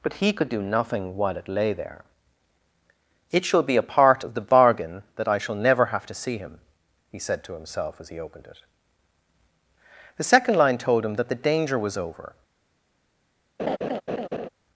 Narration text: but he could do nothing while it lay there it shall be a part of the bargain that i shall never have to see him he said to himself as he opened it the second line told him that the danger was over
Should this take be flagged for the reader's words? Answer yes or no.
no